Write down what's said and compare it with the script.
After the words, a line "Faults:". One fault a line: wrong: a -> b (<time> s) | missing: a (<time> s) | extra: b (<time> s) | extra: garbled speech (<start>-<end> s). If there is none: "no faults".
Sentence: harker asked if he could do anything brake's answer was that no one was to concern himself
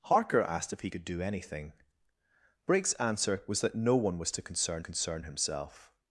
harker asked if he could do anything brake's answer was that no one was to concern concern himself
Faults:
extra: concern (4.8 s)